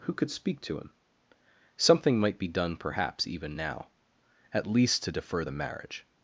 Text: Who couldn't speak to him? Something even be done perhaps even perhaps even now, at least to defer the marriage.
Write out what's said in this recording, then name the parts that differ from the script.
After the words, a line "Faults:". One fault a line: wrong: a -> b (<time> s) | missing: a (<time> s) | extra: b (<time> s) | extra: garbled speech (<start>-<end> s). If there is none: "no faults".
Who could speak to him? Something might be done perhaps even now, at least to defer the marriage.
Faults:
wrong: couldn't -> could (0.1 s)
wrong: even -> might (2.2 s)
missing: perhaps even (3.6 s)